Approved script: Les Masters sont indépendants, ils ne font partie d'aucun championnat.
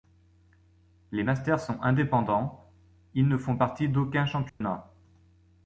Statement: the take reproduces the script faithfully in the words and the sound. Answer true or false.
false